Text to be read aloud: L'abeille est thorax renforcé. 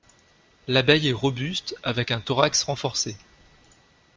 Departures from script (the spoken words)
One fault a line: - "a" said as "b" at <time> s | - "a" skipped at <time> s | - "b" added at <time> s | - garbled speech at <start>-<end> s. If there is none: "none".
- "robuste avec un" added at 1.1 s